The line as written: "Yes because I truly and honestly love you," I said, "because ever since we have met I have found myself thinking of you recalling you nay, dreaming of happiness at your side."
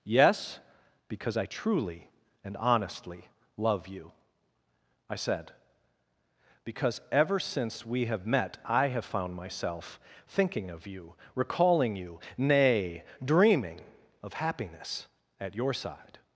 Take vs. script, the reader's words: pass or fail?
pass